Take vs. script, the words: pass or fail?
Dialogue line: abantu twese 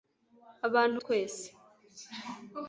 pass